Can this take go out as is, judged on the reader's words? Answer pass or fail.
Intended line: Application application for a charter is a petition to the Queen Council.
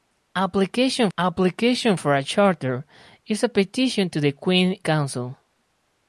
pass